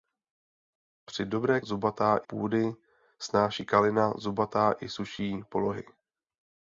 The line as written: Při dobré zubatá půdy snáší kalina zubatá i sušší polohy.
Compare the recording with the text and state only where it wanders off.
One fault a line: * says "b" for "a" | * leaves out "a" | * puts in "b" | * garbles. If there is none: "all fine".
all fine